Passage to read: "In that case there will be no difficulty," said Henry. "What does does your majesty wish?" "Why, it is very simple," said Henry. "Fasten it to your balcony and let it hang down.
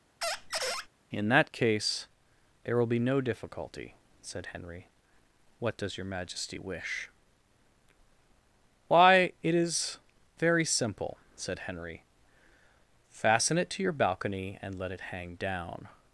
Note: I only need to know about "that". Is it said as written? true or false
true